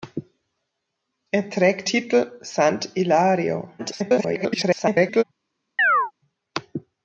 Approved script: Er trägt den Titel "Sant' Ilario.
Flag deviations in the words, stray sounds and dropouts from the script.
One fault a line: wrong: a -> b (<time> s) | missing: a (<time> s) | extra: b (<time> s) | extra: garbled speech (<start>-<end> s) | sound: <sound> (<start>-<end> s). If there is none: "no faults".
missing: den (1.9 s)
extra: garbled speech (3.8-5.2 s)
sound: chirp (5.8-6.1 s)